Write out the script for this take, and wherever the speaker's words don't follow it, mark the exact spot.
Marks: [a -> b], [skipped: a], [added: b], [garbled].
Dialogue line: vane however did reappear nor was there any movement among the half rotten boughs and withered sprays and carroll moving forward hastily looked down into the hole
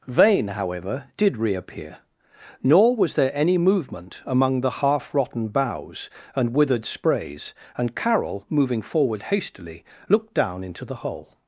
vane however did reappear nor was there any movement among the half rotten boughs and withered sprays and carroll moving forward hastily looked down into the hole